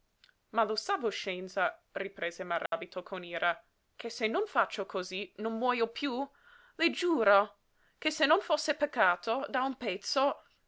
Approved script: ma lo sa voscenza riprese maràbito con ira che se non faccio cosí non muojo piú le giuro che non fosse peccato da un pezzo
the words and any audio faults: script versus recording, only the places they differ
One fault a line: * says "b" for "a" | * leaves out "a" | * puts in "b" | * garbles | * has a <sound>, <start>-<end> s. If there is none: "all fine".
* has a dropout, 2.7-2.7 s
* puts in "se"